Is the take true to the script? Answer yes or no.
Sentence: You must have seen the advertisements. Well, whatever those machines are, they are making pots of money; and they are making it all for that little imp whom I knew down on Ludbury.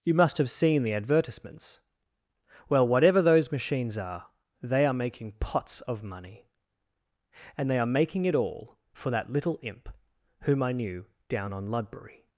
yes